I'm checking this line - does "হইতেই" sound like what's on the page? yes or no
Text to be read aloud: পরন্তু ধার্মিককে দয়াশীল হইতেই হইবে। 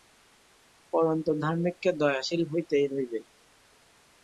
yes